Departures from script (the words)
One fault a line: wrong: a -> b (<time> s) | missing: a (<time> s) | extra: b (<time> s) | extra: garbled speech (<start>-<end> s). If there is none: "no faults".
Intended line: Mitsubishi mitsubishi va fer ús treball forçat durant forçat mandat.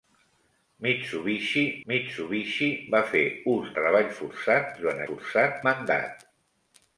no faults